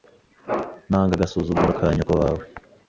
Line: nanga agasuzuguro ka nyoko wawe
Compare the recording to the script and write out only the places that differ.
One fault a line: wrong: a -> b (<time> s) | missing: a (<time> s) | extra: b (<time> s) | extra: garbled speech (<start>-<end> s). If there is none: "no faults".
no faults